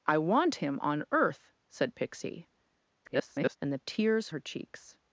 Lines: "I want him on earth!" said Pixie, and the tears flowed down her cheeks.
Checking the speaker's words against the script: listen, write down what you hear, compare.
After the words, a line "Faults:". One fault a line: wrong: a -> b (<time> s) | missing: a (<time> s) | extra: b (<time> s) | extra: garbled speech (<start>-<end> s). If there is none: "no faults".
"I want him on earth!" said Pixie, [garbled] and the tears her cheeks.
Faults:
extra: garbled speech (3.0-3.6 s)
missing: flowed down (4.3 s)